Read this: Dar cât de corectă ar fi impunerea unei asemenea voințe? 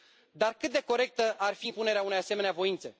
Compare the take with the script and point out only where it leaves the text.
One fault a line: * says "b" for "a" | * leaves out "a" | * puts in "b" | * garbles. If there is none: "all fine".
all fine